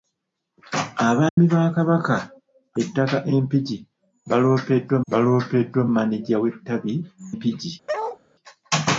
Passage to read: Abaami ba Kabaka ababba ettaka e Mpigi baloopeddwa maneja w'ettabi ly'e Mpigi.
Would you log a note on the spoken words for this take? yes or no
yes